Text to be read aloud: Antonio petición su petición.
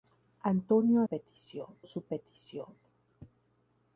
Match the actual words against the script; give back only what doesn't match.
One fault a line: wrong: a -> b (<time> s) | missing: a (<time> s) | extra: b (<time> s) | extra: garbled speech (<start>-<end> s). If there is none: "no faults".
no faults